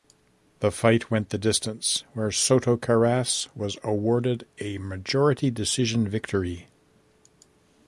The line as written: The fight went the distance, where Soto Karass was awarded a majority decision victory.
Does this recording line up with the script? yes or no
yes